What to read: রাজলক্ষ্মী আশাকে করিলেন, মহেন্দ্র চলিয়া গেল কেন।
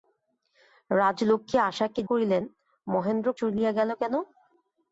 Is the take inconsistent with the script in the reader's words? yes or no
no